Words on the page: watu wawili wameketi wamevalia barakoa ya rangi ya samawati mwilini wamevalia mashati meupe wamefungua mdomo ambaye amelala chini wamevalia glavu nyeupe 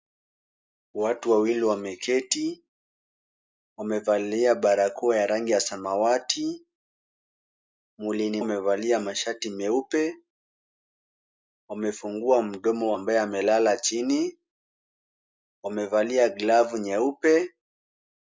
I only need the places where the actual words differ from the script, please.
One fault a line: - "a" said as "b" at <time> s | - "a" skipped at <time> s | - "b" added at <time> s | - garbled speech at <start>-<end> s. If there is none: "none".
none